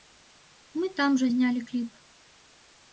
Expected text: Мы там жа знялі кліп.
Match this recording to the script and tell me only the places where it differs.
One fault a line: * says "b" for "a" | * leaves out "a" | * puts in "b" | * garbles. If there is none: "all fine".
all fine